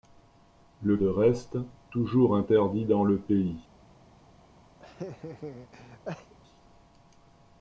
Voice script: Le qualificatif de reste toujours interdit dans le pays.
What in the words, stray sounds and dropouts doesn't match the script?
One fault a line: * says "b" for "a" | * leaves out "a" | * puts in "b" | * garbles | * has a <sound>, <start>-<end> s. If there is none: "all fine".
* leaves out "qualificatif"
* has a laugh, 4.8-6.3 s